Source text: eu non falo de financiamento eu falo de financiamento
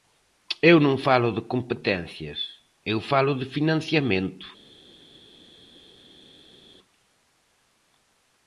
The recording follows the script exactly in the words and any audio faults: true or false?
false